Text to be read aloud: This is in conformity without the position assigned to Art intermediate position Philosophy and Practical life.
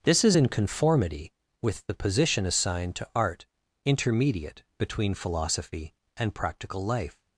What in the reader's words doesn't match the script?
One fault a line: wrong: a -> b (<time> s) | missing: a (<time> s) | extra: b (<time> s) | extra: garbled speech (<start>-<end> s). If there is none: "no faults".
wrong: without -> with (1.6 s)
wrong: position -> between (4.8 s)